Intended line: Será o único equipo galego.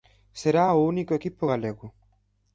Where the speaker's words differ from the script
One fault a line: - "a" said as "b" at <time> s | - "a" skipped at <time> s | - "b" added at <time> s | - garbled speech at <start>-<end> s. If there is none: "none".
none